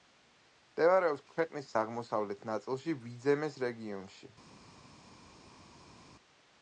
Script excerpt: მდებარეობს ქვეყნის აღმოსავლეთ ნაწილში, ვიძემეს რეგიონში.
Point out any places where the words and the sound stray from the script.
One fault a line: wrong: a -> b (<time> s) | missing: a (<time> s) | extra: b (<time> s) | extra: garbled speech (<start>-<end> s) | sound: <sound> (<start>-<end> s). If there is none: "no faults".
no faults